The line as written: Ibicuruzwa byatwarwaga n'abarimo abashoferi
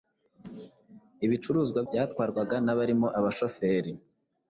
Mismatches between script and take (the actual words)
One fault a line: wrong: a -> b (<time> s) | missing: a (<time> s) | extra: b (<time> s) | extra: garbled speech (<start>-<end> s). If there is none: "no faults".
no faults